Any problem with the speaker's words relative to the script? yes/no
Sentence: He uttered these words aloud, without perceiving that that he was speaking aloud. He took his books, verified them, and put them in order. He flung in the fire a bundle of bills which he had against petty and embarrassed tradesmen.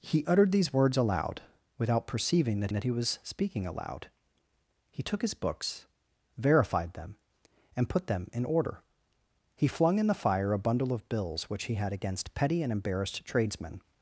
no